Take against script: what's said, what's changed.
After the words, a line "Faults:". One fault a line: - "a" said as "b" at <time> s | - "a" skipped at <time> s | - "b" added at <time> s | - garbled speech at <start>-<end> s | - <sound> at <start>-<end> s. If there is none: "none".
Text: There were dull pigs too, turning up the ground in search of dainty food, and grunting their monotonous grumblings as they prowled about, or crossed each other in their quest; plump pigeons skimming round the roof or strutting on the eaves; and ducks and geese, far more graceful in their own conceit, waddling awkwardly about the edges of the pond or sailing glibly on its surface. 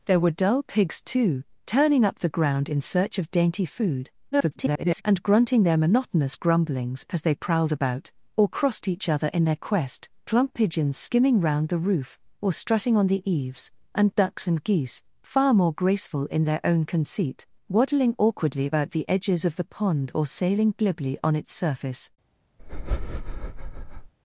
There were dull pigs too, turning up the ground in search of dainty food, [garbled] and grunting their monotonous grumblings as they prowled about, or crossed each other in their quest; plump pigeons skimming round the roof or strutting on the eaves; and ducks and geese, far more graceful in their own conceit, waddling awkwardly about the edges of the pond or sailing glibly on its surface.
Faults:
- garbled speech at 4.3-5.0 s
- breath at 22.6-24.1 s